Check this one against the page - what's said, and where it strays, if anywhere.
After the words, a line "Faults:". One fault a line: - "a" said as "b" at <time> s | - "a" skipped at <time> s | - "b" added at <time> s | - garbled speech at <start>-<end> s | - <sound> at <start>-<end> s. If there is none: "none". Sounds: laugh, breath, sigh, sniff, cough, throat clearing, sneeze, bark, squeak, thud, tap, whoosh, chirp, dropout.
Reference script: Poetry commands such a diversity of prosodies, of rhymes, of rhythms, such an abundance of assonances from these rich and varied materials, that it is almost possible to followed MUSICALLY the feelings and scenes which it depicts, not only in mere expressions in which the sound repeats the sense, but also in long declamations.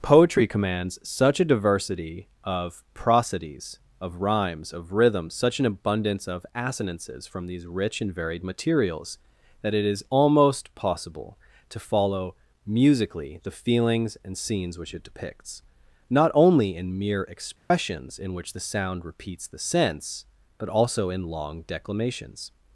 Poetry commands such a diversity of prosodies, of rhymes, of rhythms, such an abundance of assonances from these rich and varied materials, that it is almost possible to follow MUSICALLY the feelings and scenes which it depicts, not only in mere expressions in which the sound repeats the sense, but also in long declamations.
Faults:
- "followed" said as "follow" at 11.8 s
- dropout at 17.6-17.7 s